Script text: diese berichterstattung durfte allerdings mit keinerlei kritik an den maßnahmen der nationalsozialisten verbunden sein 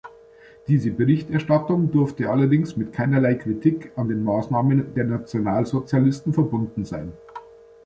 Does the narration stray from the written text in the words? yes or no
no